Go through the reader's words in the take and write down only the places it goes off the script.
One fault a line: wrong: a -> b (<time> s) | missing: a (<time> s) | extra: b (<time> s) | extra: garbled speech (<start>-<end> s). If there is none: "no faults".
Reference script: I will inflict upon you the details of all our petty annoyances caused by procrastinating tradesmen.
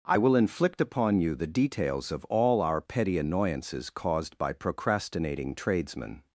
no faults